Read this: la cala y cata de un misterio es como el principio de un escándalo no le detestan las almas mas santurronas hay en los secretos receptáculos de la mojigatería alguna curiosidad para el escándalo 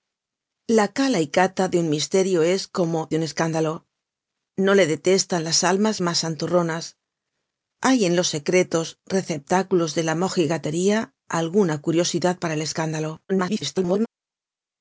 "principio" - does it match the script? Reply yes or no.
no